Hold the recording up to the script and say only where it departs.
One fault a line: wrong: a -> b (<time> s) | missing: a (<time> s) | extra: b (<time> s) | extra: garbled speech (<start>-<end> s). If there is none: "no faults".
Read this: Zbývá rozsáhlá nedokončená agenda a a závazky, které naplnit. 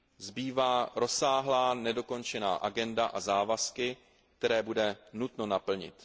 missing: a (3.2 s)
extra: bude nutno (4.6 s)